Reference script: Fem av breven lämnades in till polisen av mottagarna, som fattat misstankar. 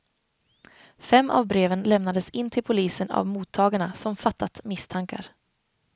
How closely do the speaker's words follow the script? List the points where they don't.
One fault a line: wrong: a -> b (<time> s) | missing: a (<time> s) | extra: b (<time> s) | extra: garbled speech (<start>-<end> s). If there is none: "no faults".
no faults